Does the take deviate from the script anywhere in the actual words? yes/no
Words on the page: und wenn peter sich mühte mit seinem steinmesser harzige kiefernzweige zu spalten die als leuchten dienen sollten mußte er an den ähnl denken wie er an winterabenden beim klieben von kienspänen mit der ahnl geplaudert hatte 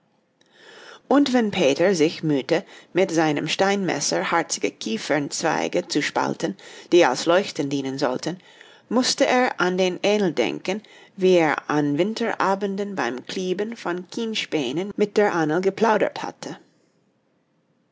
no